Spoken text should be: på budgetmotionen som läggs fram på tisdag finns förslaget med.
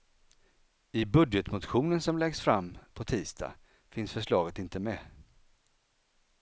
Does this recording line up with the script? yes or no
no